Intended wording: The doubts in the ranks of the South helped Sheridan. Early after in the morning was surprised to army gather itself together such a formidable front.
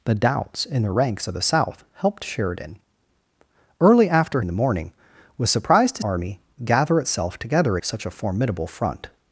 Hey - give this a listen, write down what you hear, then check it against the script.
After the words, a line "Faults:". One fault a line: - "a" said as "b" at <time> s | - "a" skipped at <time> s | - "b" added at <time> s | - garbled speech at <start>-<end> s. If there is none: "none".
The doubts in the ranks of the South helped Sheridan. Early after in the morning was surprised to army gather itself together such a formidable front.
Faults:
none